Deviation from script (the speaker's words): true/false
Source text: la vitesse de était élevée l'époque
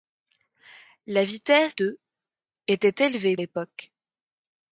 false